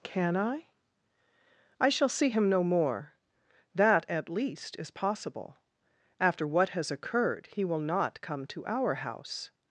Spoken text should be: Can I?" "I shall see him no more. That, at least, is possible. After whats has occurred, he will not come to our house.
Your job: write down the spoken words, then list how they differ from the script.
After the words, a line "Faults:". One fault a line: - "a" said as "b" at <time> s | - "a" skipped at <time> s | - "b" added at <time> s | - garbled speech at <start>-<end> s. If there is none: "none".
Can I?" "I shall see him no more. That, at least, is possible. After what has occurred, he will not come to our house.
Faults:
- "whats" said as "what" at 6.5 s